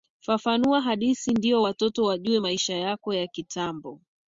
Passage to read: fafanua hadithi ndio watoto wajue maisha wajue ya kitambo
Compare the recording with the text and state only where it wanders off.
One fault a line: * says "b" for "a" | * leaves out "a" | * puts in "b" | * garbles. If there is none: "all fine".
* says "yako" for "wajue"